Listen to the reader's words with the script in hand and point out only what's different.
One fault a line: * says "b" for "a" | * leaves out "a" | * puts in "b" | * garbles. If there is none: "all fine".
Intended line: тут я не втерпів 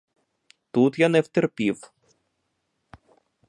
all fine